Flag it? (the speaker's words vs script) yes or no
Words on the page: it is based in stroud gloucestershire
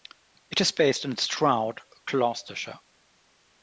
no